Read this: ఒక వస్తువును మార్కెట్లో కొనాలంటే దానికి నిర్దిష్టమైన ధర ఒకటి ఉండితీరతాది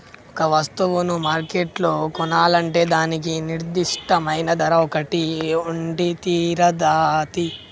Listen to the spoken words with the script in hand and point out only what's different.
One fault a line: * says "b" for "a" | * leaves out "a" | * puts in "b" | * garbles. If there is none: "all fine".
all fine